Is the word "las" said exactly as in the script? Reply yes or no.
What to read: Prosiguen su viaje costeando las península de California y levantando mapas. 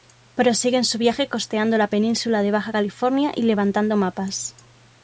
no